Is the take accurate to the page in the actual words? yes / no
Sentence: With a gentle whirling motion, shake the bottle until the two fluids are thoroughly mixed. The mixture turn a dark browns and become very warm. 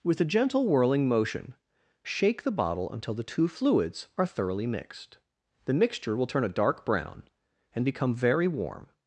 no